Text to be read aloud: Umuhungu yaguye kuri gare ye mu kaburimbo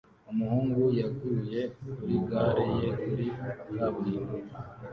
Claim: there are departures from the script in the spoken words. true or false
true